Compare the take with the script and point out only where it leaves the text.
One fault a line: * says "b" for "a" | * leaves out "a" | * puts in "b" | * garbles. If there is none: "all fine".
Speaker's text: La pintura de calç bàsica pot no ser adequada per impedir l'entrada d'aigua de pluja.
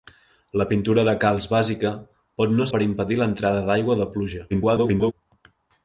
* leaves out "ser adequada"
* garbles